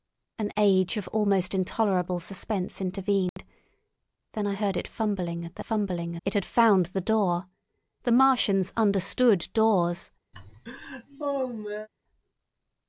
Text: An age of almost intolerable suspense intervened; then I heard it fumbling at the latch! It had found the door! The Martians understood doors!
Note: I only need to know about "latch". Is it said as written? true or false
false